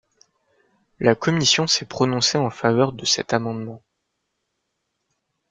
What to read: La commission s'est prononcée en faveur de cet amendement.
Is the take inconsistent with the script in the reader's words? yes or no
no